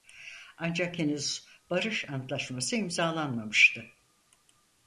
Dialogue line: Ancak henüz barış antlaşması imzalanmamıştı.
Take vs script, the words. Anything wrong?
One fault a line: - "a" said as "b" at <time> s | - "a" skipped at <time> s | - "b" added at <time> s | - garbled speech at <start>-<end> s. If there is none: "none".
none